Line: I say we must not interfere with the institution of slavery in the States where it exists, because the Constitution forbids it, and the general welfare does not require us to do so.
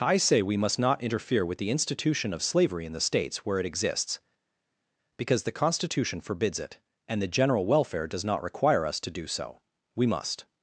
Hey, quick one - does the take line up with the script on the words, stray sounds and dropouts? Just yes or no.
no